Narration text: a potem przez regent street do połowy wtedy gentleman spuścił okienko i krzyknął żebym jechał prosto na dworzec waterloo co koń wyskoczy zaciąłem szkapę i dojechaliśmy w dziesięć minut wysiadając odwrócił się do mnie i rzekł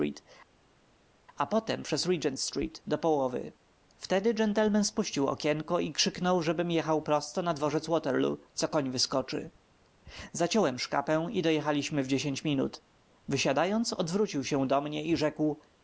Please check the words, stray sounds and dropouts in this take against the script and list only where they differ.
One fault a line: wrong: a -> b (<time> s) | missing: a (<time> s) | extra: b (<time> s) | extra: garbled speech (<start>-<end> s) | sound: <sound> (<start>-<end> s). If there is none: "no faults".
no faults